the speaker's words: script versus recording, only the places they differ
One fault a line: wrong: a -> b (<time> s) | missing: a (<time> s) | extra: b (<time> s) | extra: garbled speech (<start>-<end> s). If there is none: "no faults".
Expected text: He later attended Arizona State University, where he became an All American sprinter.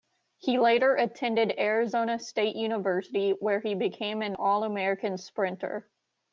no faults